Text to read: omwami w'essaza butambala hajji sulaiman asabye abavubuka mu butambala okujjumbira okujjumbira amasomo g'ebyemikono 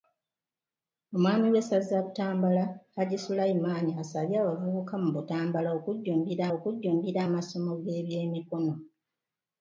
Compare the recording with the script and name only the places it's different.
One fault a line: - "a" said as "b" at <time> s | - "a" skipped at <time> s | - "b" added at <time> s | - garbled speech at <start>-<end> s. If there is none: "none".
none